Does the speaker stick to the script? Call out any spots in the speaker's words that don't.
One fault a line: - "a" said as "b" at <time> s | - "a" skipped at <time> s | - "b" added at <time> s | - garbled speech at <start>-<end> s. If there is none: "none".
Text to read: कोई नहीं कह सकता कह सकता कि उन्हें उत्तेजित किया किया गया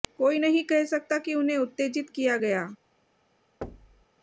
- "कह सकता" skipped at 1.2 s
- "किया" skipped at 2.4 s